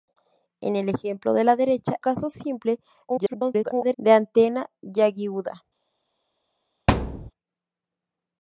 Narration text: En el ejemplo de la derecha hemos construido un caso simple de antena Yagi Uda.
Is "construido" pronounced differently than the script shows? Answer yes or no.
yes